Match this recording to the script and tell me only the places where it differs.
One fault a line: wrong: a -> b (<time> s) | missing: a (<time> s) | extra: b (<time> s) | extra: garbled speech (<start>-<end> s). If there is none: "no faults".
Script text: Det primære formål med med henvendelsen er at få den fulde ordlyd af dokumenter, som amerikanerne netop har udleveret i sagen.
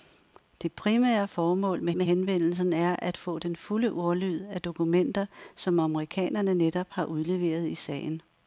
no faults